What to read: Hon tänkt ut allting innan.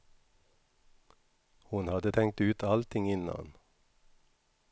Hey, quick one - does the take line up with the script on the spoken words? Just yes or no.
no